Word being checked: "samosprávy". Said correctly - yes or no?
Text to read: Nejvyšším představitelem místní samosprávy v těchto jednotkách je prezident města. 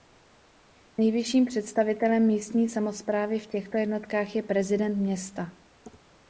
yes